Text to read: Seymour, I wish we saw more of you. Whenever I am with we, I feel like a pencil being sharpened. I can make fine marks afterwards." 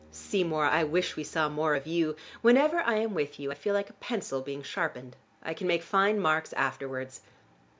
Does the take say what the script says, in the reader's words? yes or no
no